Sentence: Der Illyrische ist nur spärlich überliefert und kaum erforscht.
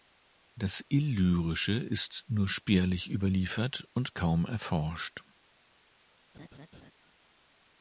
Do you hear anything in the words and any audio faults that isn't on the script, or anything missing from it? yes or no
yes